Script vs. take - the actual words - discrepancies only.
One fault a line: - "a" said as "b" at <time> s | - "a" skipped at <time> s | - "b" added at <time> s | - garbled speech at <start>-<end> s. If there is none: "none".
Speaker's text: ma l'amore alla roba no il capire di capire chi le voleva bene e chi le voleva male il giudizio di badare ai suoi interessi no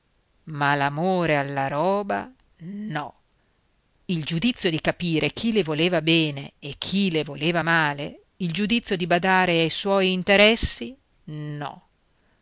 - "capire" said as "giudizio" at 4.2 s